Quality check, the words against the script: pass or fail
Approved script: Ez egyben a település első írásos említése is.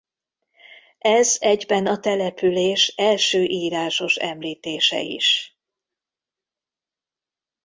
pass